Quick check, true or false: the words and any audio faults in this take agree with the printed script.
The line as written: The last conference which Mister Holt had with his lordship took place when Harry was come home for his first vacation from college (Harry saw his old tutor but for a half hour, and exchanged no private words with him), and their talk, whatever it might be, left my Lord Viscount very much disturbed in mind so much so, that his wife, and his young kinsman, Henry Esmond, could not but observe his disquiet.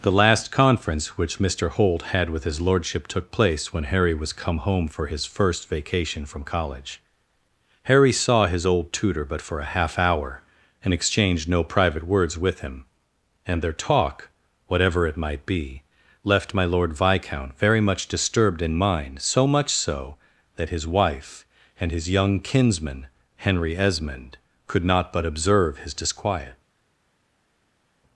true